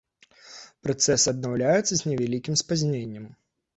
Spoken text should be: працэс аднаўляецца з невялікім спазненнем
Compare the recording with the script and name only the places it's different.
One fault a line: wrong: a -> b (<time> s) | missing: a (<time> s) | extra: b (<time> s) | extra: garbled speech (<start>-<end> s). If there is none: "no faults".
no faults